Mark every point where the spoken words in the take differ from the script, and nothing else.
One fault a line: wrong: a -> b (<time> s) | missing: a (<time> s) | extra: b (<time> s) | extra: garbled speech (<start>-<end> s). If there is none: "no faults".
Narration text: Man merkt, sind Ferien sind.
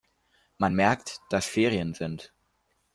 wrong: sind -> dass (1.3 s)